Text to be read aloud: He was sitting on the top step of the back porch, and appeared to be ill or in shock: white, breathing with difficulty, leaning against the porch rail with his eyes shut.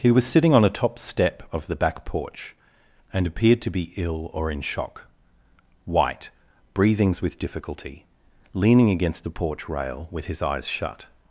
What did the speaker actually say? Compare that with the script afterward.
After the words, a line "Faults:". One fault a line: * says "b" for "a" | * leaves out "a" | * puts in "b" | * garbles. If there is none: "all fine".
He was sitting on a top step of the back porch, and appeared to be ill or in shock: white, breathings with difficulty, leaning against the porch rail with his eyes shut.
Faults:
* says "a" for "the"
* says "breathings" for "breathing"